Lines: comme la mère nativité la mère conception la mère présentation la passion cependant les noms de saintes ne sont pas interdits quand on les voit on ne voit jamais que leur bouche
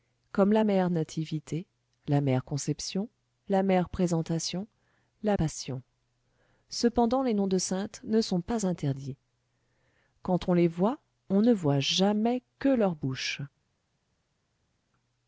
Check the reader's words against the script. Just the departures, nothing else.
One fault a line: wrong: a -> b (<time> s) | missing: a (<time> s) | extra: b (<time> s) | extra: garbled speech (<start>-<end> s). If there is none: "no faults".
no faults